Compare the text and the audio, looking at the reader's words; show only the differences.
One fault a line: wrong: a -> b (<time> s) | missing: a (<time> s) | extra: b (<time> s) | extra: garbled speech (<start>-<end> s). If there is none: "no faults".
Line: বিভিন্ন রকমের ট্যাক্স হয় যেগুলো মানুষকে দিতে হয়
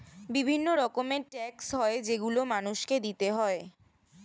no faults